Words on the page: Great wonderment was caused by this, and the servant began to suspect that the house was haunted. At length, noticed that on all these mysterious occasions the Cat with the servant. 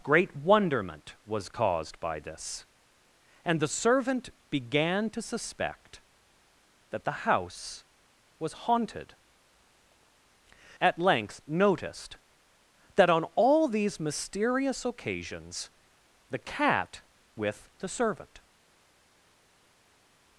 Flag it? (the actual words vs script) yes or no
no